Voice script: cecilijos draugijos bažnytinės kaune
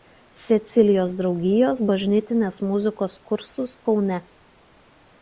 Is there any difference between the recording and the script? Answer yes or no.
yes